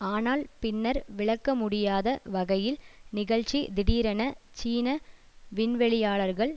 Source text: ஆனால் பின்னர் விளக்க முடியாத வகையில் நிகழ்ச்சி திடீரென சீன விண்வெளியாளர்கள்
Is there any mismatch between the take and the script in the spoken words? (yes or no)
no